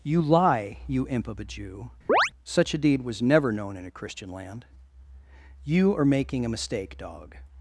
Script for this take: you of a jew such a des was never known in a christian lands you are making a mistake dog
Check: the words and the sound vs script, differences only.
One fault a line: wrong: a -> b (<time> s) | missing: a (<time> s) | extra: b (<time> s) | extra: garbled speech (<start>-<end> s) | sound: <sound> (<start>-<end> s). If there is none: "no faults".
extra: lie you imp (0.2 s)
sound: chirp (2.1-2.3 s)
wrong: des -> deed (2.8 s)
wrong: lands -> land (4.3 s)